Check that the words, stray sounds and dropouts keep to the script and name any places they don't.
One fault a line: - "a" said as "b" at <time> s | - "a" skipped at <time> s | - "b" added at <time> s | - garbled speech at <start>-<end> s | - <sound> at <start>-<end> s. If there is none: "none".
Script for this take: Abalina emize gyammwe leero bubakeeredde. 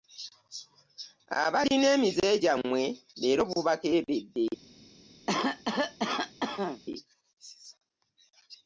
- cough at 5.3-6.8 s